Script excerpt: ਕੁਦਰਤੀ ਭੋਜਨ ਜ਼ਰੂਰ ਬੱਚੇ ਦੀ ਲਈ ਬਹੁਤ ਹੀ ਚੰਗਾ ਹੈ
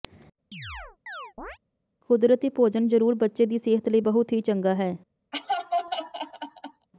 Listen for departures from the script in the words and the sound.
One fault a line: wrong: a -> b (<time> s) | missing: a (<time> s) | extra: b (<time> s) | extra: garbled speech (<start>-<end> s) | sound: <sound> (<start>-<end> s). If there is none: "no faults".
sound: chirp (0.5-1.6 s)
extra: ਸਿਹਤ (3.6 s)
sound: laugh (5.3-6.9 s)